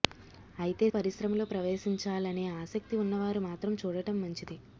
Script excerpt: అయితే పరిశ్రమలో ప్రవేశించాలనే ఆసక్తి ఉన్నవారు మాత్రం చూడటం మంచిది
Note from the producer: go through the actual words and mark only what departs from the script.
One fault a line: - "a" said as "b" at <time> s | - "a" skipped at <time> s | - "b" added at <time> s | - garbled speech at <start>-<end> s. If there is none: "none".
none